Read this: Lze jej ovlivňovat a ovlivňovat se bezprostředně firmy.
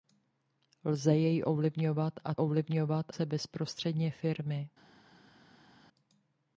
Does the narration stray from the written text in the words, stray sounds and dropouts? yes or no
no